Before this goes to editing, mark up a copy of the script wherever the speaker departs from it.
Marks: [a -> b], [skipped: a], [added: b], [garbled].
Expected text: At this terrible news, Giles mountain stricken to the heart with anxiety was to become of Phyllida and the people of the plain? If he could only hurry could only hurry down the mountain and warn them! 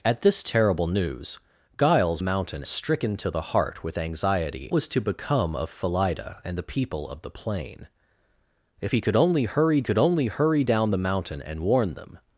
At this terrible news, Giles mountain stricken to the heart with anxiety was to become of Phyllida and the people of the plain? If he could only hurry could only hurry down the mountain and warn them!